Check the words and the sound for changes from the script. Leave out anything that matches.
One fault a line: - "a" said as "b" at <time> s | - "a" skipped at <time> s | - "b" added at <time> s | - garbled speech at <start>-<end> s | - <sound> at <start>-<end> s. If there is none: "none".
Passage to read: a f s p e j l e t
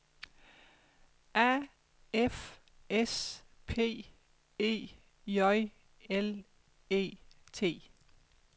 none